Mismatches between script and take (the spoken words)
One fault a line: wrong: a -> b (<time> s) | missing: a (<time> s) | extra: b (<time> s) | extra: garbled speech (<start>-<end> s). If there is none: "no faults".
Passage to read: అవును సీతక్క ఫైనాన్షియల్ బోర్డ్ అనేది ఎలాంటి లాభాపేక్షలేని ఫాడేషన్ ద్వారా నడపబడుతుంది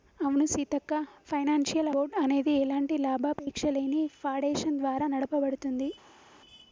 no faults